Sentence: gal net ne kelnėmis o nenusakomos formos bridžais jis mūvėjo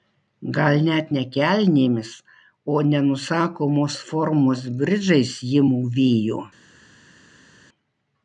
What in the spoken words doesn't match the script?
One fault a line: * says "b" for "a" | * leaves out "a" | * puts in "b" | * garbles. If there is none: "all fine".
* says "ji" for "jis"